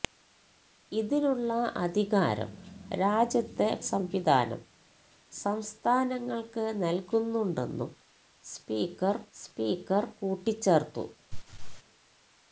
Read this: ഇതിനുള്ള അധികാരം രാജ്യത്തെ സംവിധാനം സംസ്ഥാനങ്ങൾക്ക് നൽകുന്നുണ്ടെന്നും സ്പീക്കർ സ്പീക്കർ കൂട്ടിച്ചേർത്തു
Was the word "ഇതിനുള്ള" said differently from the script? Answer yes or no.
no